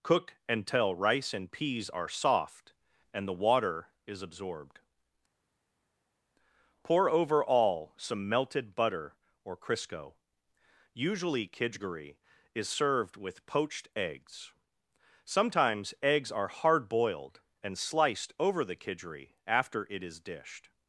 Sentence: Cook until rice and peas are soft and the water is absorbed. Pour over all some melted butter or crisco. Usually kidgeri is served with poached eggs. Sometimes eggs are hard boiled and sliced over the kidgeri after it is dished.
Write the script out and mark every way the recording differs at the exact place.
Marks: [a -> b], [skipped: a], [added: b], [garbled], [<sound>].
Cook until rice and peas are soft and the water is absorbed. Pour over all some melted butter or crisco. Usually kidgeri is served with poached eggs. Sometimes eggs are hard boiled and sliced over the kidgeri after it is dished.